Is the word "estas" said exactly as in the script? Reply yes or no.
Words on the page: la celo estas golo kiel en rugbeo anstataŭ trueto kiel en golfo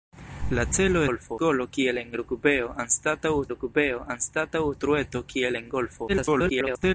no